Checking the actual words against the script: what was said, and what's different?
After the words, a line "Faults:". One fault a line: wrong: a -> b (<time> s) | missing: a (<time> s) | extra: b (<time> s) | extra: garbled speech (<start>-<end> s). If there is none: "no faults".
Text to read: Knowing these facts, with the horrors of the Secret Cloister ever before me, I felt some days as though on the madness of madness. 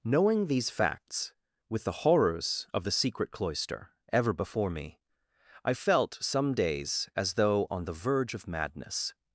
Knowing these facts, with the horrors of the Secret Cloister ever before me, I felt some days as though on the verge of madness.
Faults:
wrong: madness -> verge (7.9 s)